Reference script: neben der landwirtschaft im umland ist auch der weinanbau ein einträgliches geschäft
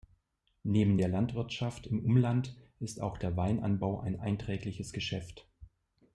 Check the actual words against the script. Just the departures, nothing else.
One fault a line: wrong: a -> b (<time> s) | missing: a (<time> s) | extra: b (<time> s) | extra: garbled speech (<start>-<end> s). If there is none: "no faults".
no faults